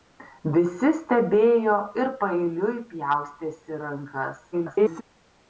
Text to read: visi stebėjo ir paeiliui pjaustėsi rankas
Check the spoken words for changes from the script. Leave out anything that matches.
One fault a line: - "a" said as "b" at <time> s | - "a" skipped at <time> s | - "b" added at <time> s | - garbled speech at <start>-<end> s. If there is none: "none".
- garbled speech at 4.5-5.0 s